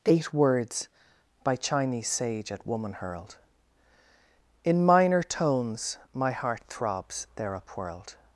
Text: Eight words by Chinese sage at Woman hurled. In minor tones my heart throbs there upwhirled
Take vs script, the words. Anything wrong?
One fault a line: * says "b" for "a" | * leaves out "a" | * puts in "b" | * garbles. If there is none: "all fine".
all fine